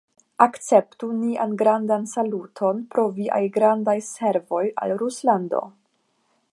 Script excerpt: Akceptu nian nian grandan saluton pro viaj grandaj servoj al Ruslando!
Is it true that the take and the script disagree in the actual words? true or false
true